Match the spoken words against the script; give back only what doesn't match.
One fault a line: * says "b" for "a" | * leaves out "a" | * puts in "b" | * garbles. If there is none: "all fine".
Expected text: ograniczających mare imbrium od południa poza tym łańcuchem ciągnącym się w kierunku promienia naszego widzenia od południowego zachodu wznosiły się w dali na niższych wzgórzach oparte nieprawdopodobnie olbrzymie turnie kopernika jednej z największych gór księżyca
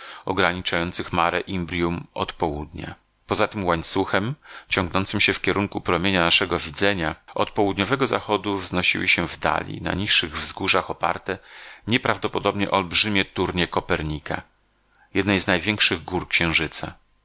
all fine